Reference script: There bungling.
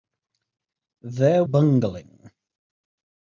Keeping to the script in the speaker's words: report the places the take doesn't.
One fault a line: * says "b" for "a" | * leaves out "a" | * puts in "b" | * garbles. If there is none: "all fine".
all fine